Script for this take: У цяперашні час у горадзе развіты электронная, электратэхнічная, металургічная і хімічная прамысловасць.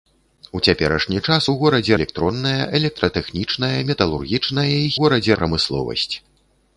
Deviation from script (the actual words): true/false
true